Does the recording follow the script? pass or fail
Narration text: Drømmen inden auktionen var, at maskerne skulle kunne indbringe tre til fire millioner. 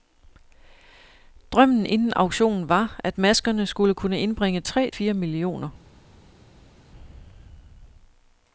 fail